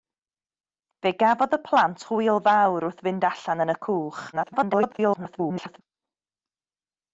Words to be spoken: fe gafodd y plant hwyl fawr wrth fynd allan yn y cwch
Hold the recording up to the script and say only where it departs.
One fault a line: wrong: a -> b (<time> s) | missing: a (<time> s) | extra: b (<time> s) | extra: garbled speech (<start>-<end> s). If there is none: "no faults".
extra: garbled speech (4.3-5.8 s)